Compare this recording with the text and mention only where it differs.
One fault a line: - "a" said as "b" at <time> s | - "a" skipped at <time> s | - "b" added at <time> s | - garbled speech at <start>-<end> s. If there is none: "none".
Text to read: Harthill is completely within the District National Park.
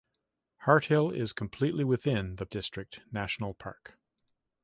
none